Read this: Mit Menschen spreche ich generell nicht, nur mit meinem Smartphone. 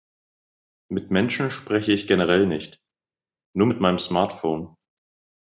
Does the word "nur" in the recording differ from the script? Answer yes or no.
no